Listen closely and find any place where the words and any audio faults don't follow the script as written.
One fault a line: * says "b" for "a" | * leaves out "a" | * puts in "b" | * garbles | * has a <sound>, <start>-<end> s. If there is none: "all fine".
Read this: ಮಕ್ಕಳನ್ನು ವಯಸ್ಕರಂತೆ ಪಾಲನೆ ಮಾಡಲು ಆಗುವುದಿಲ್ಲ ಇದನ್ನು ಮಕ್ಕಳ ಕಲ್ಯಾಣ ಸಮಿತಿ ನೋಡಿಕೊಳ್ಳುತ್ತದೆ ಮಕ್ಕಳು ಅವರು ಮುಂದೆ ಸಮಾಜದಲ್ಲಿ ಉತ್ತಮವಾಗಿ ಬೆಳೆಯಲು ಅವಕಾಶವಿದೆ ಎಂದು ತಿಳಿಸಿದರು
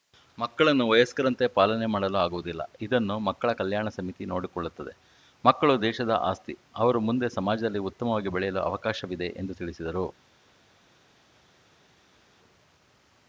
* puts in "ದೇಶದ ಆಸ್ತಿ"